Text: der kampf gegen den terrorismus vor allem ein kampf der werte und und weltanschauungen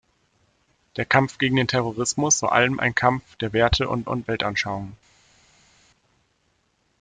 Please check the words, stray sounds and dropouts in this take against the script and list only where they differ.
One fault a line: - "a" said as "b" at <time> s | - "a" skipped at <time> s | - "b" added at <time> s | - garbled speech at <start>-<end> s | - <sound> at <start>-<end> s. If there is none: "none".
none